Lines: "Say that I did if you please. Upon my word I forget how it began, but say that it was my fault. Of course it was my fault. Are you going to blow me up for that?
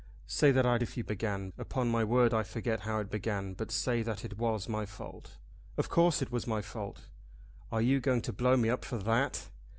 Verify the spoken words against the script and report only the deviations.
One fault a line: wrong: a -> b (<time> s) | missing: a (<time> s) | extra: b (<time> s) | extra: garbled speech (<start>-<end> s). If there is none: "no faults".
missing: did (0.8 s)
wrong: please -> began (1.1 s)